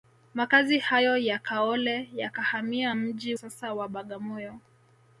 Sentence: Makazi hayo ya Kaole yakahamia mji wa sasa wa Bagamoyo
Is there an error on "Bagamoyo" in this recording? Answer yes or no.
no